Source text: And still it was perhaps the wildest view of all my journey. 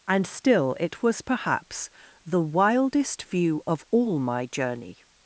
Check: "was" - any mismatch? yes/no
no